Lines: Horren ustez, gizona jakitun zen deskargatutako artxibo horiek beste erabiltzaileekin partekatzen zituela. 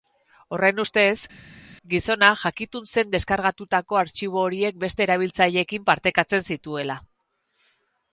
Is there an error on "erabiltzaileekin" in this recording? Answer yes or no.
no